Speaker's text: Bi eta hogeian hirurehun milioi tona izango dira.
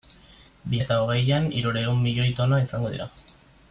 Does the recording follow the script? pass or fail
pass